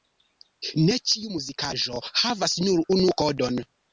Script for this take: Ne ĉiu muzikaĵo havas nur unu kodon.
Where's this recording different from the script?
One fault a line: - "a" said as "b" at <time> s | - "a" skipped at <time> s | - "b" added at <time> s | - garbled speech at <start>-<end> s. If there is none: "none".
none